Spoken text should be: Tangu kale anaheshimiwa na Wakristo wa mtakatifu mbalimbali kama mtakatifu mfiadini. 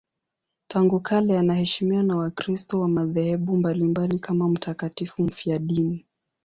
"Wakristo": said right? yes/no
yes